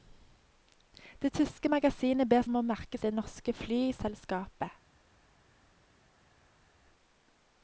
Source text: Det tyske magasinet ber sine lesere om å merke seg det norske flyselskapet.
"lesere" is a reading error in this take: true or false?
true